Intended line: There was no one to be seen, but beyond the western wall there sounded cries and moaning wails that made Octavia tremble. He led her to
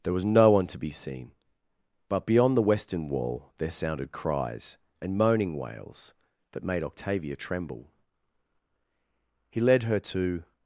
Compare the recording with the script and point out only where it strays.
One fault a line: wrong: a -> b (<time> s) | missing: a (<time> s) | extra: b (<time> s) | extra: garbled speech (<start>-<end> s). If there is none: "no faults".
no faults